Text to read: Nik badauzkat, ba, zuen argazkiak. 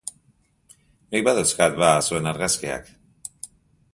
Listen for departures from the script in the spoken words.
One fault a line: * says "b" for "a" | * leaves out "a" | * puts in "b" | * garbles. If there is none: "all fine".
all fine